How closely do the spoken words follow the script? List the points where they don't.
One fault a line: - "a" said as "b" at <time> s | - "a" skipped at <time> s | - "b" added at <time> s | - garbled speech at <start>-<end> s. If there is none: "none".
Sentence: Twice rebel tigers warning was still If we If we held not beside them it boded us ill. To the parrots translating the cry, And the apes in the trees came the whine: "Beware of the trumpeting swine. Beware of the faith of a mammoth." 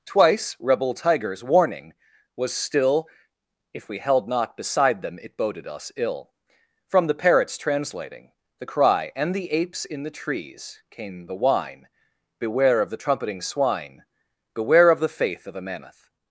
- "If we" skipped at 4.0 s
- "To" said as "From" at 6.9 s